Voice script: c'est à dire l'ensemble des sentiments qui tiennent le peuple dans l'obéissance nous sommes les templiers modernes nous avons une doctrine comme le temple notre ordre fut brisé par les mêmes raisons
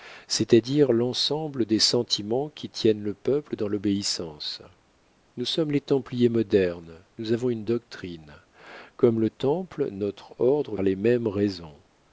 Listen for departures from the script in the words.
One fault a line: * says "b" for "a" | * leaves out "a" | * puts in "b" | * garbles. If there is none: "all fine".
* leaves out "fut brisé par"